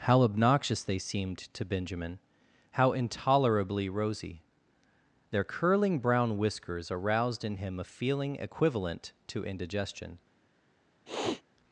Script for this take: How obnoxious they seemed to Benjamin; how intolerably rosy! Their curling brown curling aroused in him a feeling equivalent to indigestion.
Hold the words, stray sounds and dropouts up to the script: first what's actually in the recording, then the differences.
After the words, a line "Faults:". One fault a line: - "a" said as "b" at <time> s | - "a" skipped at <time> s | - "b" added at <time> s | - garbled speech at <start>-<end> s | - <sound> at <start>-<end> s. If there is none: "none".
How obnoxious they seemed to Benjamin; how intolerably rosy! Their curling brown whiskers aroused in him a feeling equivalent to indigestion.
Faults:
- "curling" said as "whiskers" at 6.4 s
- sniff at 11.1-11.4 s